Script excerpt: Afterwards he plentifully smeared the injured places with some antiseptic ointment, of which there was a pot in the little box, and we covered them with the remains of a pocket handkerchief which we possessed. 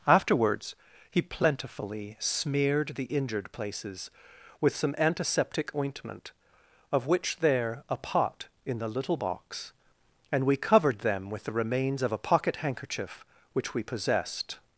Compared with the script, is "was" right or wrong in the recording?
wrong